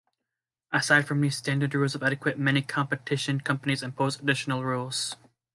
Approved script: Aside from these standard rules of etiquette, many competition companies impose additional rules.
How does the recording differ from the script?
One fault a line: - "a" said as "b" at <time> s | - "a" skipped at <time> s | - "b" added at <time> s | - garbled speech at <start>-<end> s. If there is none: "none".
none